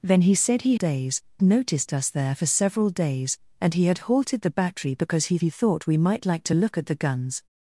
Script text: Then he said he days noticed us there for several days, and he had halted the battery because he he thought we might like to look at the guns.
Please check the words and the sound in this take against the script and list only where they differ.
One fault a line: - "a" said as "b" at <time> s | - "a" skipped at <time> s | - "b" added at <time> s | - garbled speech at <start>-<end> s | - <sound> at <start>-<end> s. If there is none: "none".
none